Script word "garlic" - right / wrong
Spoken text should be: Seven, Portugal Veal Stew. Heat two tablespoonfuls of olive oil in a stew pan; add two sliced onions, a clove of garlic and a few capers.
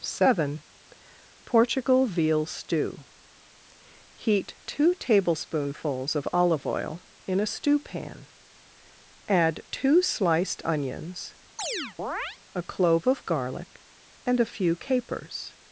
right